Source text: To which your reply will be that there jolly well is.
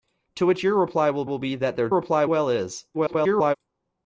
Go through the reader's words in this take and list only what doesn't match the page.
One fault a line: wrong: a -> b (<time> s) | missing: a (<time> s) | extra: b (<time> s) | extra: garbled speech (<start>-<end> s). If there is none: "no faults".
extra: will (1.2 s)
wrong: jolly -> reply (1.9 s)
extra: garbled speech (2.9-3.6 s)